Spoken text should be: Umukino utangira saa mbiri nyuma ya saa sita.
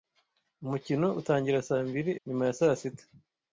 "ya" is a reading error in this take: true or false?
false